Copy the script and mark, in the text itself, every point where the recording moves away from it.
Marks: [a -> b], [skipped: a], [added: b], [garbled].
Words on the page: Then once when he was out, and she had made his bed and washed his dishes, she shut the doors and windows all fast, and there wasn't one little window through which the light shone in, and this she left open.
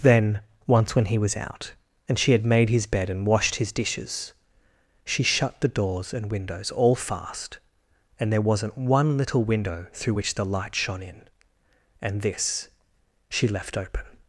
Then once when he was out, and she had made his bed and washed his dishes, she shut the doors and windows all fast, and there wasn't one little window through which the light shone in, and this she left open.